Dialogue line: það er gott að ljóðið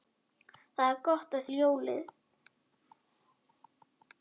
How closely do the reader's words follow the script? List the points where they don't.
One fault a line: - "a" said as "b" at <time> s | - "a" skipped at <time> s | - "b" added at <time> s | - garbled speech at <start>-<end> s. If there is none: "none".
none